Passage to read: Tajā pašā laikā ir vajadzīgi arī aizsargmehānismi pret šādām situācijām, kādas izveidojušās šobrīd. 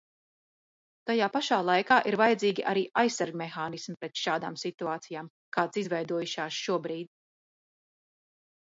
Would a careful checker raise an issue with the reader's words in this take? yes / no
no